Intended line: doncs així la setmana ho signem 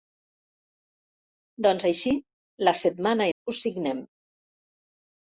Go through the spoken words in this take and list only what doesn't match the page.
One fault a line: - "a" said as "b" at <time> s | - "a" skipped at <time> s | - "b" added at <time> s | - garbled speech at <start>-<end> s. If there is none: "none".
none